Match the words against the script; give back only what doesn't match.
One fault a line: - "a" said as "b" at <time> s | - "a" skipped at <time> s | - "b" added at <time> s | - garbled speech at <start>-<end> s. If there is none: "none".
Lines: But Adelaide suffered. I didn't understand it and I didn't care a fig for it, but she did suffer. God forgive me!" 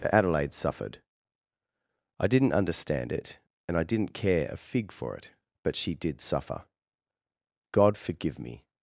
none